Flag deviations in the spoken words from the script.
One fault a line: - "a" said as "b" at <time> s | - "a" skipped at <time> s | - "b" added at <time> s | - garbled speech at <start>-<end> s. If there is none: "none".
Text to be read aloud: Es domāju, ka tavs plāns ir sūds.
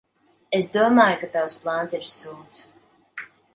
none